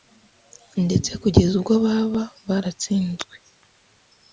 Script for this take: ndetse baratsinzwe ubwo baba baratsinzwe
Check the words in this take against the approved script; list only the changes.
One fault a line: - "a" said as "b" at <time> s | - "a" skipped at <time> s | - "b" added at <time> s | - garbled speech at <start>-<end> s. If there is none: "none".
- "baratsinzwe" said as "kugeza" at 1.2 s